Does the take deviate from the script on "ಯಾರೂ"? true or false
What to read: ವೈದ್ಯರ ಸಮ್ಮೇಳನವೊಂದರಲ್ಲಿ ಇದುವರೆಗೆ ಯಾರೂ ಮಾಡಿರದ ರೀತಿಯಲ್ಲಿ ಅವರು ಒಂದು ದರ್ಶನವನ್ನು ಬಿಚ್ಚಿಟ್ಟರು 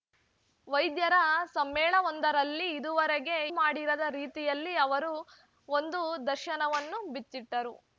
true